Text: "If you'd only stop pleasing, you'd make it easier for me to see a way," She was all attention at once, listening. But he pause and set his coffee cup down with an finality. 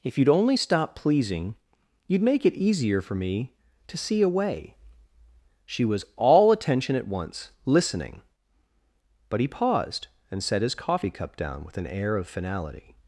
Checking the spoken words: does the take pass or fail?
fail